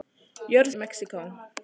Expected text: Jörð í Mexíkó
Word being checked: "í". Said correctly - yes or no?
yes